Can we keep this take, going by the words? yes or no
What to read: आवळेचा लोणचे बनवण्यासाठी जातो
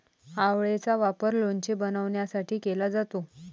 no